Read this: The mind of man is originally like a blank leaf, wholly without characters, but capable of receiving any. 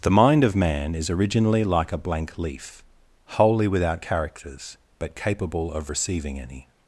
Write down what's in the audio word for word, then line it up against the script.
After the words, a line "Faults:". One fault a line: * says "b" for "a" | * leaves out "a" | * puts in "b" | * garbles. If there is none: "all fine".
The mind of man is originally like a blank leaf, wholly without characters, but capable of receiving any.
Faults:
all fine